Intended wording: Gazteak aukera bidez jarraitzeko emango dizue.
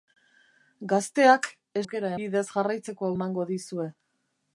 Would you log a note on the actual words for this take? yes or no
no